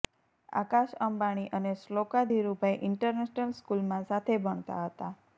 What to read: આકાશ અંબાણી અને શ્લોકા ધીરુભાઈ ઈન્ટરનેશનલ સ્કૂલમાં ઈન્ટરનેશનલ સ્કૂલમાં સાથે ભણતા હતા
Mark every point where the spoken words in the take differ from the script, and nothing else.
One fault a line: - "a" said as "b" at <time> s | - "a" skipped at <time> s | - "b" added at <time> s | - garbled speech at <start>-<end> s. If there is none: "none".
- "ઈન્ટરનેશનલ સ્કૂલમાં" skipped at 4.1 s